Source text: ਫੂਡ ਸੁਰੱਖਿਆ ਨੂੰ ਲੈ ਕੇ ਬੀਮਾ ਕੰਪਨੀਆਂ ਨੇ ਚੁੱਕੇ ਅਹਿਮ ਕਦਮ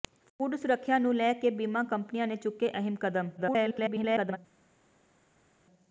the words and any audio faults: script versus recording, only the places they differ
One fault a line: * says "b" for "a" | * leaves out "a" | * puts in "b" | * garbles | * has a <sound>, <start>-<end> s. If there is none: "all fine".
* garbles